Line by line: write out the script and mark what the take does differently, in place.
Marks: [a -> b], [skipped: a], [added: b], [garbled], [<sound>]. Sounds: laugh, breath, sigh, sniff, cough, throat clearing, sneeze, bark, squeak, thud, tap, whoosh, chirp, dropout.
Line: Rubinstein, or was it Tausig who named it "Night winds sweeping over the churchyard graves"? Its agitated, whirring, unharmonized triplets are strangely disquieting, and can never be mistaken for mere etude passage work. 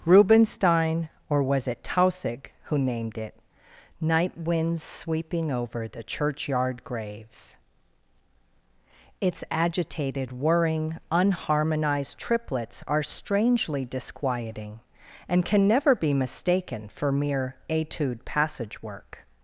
Rubinstein, or was it Tausig who named it "Night winds sweeping over the churchyard graves"? Its agitated, whirring, unharmonized triplets are strangely disquieting, and can never be mistaken for mere etude passage work.